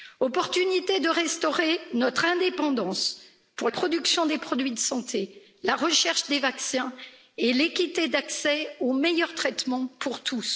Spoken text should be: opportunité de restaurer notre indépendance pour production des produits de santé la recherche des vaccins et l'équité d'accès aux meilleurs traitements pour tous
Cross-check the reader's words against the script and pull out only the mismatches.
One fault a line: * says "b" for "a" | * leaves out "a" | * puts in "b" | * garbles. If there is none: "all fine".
all fine